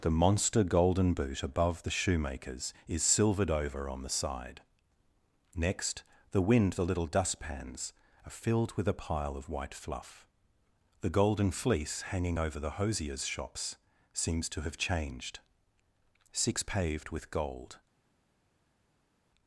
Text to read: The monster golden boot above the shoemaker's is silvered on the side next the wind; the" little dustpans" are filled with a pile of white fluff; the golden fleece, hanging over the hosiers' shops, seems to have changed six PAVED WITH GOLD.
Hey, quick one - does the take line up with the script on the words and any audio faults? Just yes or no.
no